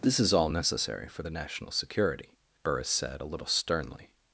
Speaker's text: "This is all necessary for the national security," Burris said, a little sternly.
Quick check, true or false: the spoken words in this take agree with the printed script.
true